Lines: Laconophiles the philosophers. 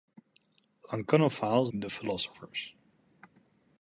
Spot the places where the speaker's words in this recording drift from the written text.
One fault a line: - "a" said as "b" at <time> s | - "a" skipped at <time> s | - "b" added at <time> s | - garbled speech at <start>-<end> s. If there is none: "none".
none